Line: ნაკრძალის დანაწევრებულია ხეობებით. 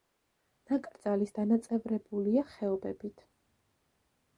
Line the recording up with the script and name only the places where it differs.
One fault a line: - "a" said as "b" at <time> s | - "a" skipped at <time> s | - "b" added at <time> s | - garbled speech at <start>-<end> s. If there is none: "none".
none